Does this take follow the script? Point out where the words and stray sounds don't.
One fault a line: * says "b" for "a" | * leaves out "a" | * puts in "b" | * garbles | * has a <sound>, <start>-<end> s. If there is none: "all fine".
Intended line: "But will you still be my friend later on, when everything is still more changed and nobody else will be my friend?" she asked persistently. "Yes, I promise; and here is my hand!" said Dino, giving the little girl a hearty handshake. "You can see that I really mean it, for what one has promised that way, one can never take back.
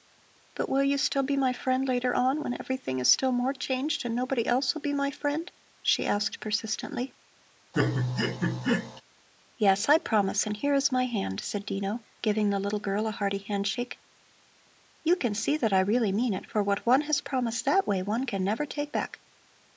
* has a laugh, 7.7-9.0 s